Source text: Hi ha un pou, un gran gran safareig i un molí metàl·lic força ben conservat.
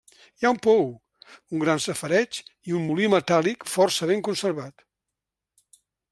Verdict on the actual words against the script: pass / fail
fail